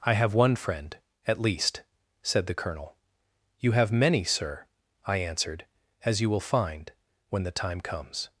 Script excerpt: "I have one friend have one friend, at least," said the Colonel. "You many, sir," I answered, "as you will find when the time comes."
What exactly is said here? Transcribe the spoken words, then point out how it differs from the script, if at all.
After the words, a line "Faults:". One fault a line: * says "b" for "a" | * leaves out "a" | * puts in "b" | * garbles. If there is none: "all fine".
"I have one friend, at least," said the Colonel. "You have many, sir," I answered, "as you will find when the time comes."
Faults:
* leaves out "have one friend"
* puts in "have"